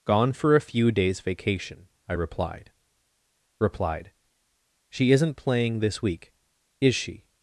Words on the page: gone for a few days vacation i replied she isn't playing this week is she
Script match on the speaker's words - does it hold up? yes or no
no